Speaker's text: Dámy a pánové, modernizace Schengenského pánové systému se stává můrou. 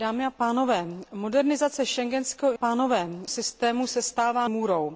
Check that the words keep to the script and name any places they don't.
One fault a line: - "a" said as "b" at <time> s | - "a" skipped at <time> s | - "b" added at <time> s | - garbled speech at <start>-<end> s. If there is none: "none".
none